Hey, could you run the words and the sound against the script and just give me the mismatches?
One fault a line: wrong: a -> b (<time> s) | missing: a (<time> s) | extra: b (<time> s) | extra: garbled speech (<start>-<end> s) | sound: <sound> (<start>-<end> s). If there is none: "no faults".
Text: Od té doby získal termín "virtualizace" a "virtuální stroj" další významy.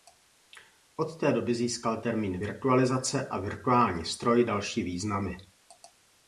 no faults